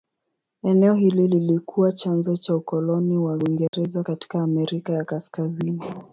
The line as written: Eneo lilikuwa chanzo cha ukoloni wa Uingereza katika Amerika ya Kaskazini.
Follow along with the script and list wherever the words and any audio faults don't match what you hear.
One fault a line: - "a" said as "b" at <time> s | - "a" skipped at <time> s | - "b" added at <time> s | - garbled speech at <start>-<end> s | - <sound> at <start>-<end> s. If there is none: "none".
- "hili" added at 0.9 s
- dropout at 3.7-3.7 s